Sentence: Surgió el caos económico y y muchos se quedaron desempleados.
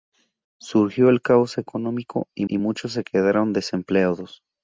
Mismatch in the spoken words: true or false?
false